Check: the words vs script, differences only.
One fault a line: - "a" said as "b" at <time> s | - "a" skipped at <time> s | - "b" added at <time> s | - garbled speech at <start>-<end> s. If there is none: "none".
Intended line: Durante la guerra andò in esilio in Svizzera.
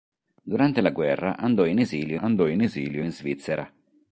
- "andò in esilio" added at 2.2 s